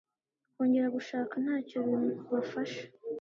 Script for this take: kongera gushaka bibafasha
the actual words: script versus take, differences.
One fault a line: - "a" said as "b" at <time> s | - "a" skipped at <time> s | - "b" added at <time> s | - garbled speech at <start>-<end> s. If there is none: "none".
- "ntacyo" added at 1.4 s